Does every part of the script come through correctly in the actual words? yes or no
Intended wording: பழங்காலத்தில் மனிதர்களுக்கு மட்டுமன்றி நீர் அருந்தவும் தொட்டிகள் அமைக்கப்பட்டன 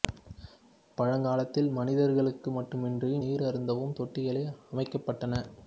yes